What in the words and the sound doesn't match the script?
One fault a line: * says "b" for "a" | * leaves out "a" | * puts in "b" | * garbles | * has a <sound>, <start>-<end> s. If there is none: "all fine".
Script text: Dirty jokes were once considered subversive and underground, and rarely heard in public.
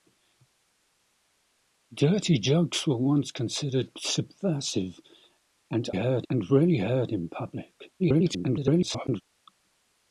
* says "heard" for "underground"
* garbles